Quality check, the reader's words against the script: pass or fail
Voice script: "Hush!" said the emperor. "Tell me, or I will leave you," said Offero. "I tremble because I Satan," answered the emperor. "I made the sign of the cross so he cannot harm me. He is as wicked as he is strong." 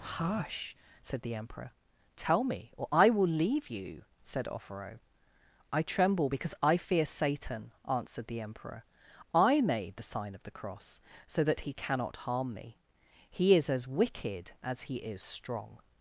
fail